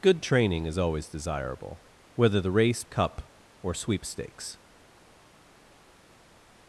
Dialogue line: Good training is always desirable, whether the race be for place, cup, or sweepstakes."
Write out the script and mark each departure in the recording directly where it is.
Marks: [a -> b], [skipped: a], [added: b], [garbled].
Good training is always desirable, whether the race [skipped: be for place,] cup, or sweepstakes."